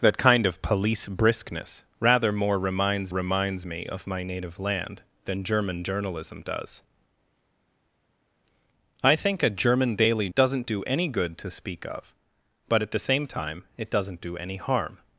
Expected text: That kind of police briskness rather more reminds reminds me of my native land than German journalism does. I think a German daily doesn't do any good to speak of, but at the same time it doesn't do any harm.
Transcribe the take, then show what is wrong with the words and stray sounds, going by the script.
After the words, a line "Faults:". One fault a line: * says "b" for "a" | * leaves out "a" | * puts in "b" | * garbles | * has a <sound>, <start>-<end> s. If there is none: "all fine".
That kind of police briskness rather more reminds reminds me of my native land than German journalism does. I think a German daily doesn't do any good to speak of, but at the same time it doesn't do any harm.
Faults:
all fine